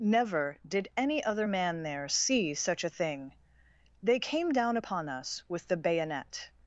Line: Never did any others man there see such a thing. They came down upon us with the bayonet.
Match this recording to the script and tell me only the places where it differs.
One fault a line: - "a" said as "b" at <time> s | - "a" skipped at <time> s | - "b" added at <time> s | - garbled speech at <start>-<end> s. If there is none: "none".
- "others" said as "other" at 1.2 s